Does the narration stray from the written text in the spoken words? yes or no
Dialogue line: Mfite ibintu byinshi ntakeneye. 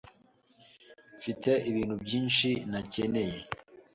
no